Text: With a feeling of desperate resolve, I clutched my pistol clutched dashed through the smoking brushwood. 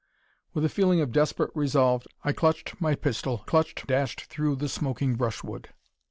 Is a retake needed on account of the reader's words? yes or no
no